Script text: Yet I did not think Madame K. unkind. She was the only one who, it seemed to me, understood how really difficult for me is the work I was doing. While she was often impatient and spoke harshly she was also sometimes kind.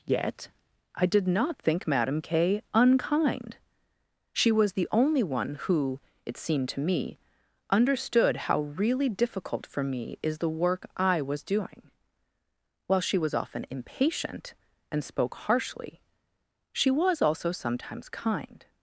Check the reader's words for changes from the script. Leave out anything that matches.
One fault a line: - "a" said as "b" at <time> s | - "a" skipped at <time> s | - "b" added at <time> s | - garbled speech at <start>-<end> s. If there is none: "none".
none